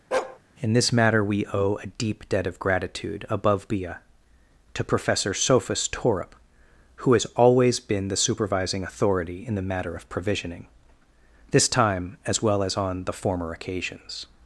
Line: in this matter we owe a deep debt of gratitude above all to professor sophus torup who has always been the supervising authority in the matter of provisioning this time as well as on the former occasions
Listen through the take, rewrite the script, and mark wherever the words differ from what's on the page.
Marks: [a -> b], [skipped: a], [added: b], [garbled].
in this matter we owe a deep debt of gratitude above [all -> bia] to professor sophus torup who has always been the supervising authority in the matter of provisioning this time as well as on the former occasions